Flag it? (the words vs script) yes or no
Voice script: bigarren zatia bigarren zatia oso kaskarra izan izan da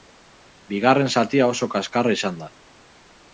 yes